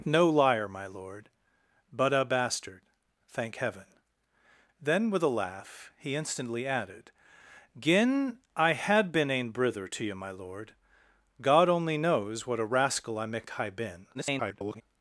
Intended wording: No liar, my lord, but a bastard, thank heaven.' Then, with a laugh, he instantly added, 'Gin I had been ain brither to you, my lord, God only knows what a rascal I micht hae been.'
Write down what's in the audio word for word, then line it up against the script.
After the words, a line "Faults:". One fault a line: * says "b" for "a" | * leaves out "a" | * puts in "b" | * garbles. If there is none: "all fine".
No liar, my lord, but a bastard, thank heaven.' Then, with a laugh, he instantly added, 'Gin I had been ain brither to you, my lord, God only knows what a rascal I micht hae been.' [garbled]
Faults:
* garbles